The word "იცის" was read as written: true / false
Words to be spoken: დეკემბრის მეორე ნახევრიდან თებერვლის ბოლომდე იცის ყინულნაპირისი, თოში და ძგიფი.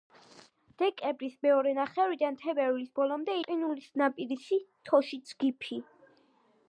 false